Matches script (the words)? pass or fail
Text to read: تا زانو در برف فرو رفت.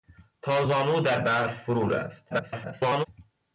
fail